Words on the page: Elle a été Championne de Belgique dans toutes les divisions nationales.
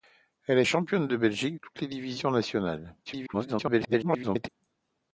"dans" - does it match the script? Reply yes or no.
no